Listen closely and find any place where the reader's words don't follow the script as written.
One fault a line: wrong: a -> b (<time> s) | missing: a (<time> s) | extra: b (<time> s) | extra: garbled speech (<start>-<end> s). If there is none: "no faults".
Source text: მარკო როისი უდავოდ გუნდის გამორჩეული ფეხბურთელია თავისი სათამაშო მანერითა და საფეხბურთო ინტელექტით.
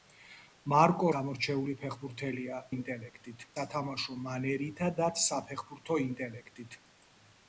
missing: როისი უდავოდ გუნდის (1.1 s)
wrong: თავისი -> ინტელექტით (2.7 s)